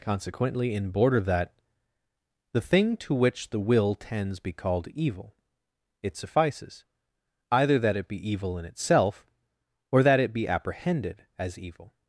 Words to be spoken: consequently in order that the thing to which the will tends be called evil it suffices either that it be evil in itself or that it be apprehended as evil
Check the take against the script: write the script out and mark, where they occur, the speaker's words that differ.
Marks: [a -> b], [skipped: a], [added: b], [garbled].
consequently in [order -> border] that the thing to which the will tends be called evil it suffices either that it be evil in itself or that it be apprehended as evil